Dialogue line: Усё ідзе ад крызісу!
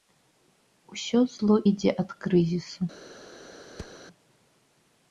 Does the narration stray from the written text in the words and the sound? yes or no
yes